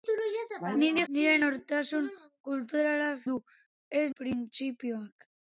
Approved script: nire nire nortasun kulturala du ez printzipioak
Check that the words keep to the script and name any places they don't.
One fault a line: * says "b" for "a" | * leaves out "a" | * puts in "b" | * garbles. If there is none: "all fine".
all fine